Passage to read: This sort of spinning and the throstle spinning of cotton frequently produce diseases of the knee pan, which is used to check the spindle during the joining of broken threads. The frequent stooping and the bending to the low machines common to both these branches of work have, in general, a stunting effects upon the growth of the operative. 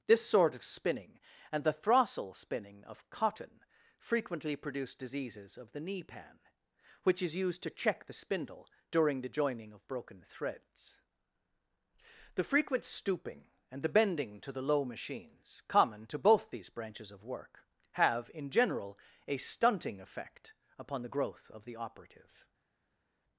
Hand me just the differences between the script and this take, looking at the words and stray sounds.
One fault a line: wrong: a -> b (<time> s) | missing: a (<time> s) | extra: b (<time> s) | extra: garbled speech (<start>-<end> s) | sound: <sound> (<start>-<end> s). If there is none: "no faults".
wrong: effects -> effect (20.0 s)